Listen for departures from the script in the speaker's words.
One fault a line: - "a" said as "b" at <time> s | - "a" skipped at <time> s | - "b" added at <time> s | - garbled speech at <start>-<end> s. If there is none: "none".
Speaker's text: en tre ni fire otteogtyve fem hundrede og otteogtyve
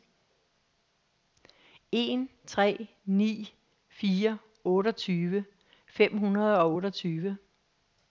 none